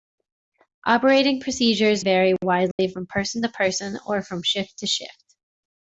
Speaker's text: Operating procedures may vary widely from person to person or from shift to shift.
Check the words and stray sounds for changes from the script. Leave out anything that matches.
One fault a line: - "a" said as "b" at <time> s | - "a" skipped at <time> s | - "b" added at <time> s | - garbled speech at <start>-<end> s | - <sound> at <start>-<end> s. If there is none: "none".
- "may" skipped at 2.0 s
- dropout at 2.7-2.8 s